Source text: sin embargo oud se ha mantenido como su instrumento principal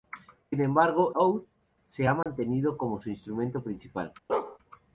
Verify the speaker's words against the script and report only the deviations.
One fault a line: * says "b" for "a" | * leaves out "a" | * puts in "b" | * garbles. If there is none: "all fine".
all fine